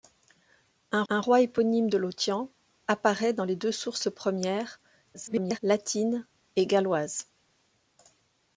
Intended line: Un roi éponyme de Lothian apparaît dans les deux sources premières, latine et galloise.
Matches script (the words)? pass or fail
fail